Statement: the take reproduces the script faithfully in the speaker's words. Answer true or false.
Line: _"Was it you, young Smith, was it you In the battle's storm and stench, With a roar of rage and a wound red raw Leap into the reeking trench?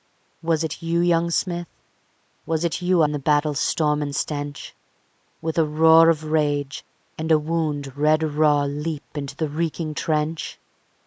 true